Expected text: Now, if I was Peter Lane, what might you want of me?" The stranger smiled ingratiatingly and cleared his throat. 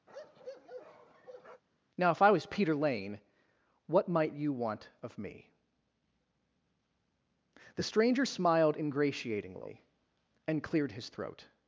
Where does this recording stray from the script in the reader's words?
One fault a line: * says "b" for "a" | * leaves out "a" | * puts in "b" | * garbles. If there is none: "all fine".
all fine